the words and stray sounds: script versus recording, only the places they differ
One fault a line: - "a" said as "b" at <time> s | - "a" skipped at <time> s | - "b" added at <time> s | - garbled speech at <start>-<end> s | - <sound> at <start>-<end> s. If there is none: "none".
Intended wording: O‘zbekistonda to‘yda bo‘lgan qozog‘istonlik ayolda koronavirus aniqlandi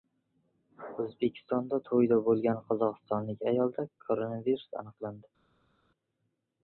none